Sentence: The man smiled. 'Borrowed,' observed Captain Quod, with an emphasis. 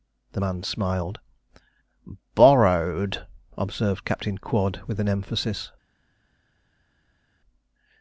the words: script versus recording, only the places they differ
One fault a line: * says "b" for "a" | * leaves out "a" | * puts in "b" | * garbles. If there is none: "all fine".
all fine